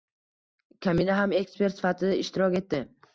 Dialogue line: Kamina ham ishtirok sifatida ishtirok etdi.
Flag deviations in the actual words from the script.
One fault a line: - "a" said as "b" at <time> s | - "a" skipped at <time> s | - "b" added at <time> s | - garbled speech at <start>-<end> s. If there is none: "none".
- "ishtirok" said as "ekspert" at 1.4 s